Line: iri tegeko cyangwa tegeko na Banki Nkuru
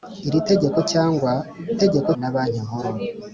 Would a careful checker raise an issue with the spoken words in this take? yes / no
no